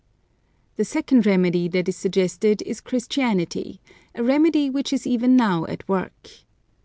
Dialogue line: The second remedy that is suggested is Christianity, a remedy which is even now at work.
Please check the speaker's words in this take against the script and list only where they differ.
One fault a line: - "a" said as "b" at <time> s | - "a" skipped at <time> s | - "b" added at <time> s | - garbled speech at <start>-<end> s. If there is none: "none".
none